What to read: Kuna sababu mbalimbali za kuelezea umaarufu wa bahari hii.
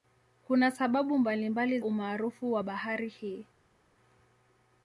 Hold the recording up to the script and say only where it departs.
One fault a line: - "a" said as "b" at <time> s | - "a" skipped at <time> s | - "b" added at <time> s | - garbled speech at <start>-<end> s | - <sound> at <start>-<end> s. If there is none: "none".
- "za kuelezea" skipped at 1.8 s